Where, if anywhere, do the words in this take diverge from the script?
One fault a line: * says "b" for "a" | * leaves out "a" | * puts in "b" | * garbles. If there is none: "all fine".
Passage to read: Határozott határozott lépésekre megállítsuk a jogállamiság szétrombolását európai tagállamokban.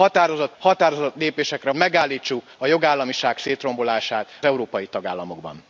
all fine